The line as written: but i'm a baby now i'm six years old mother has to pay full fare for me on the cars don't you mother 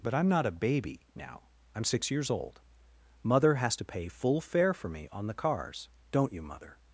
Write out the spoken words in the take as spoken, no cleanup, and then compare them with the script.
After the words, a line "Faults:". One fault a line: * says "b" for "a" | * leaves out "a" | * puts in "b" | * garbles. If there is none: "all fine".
but i'm not a baby now i'm six years old mother has to pay full fare for me on the cars don't you mother
Faults:
* puts in "not"